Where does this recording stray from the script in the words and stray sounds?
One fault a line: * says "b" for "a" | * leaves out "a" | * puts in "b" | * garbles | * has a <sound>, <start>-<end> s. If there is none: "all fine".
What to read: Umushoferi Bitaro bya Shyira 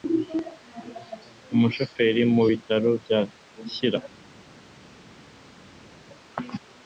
* puts in "mu"